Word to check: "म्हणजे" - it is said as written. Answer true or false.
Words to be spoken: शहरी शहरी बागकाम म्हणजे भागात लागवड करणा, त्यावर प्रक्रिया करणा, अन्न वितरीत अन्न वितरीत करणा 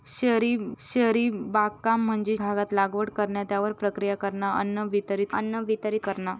true